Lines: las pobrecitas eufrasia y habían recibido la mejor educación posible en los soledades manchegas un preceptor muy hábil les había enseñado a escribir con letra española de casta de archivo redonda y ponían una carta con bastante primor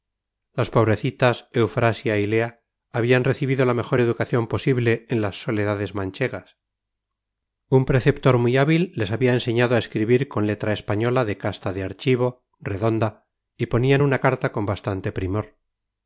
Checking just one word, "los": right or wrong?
wrong